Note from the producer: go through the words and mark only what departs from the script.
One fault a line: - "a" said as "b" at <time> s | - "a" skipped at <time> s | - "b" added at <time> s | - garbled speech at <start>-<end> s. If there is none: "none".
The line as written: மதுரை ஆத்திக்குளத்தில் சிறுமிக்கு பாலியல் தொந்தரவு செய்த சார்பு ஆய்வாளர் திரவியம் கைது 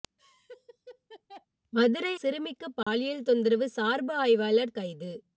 - "ஆத்திக்குளத்தில்" skipped at 2.1 s
- "செய்த" skipped at 3.7 s
- "திரவியம்" skipped at 4.8 s